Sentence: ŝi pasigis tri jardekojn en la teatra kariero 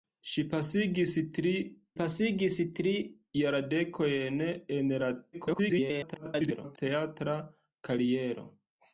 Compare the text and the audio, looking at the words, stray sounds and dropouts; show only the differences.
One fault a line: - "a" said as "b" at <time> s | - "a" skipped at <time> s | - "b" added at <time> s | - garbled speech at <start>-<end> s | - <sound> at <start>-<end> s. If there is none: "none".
- "pasigis tri" added at 2.0 s
- garbled speech at 5.3-6.8 s